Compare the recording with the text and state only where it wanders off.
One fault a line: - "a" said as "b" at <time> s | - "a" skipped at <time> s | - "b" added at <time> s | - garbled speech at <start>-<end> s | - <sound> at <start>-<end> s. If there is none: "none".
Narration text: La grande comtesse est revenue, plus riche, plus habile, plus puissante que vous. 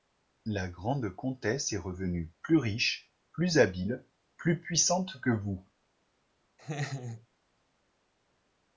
- laugh at 6.6-7.3 s